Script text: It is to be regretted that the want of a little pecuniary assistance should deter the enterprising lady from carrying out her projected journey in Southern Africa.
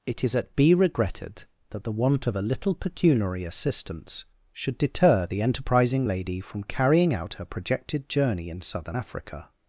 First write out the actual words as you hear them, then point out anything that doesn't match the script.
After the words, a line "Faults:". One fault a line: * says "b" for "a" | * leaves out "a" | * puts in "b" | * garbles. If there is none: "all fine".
It is at be regretted that the want of a little pecuniary assistance should deter the enterprising lady from carrying out her projected journey in Southern Africa.
Faults:
* says "at" for "to"